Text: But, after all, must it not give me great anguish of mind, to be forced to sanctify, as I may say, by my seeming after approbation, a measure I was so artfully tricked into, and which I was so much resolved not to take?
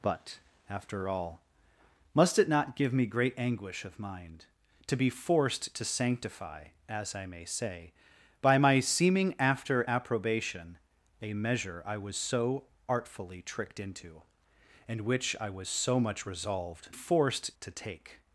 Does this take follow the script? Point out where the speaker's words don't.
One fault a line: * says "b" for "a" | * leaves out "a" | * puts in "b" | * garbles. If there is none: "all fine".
* says "forced" for "not"